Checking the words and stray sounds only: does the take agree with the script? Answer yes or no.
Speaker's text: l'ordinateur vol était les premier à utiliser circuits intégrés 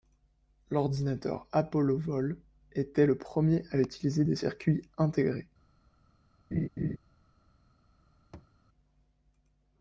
no